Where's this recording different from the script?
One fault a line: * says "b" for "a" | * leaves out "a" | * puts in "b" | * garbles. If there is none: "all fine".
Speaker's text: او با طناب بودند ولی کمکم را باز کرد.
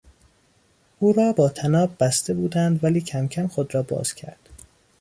* puts in "را"
* puts in "بسته"
* puts in "خود"